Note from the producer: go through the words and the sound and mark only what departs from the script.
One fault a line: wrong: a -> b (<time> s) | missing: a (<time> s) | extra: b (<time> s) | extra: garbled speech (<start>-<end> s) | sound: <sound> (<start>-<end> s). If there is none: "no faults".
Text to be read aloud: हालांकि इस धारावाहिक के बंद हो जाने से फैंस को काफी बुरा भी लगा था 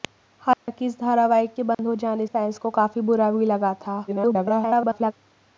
sound: dropout (0.5-0.7 s)
sound: dropout (1.7-1.8 s)
missing: से (2.3 s)
extra: garbled speech (4.1-5.1 s)